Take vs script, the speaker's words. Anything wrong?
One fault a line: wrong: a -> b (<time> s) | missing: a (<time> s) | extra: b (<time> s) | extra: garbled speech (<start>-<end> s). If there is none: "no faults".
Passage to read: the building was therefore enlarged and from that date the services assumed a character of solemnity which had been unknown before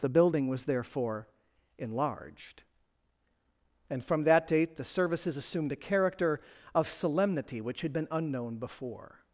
no faults